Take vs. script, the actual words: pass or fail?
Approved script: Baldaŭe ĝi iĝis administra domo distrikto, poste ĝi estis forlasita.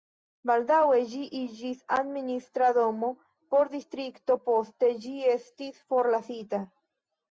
fail